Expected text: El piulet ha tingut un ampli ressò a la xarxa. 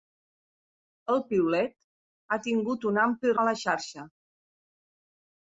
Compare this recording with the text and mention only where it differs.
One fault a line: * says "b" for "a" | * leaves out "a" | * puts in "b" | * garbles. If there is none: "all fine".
* leaves out "ressò"